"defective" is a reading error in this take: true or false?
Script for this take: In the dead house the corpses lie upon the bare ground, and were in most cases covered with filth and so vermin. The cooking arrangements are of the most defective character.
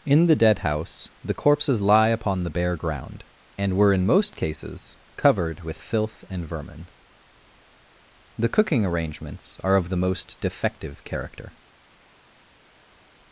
false